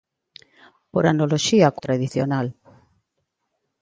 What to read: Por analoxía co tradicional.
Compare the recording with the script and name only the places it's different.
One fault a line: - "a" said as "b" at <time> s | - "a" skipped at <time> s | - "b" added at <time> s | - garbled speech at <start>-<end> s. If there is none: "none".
none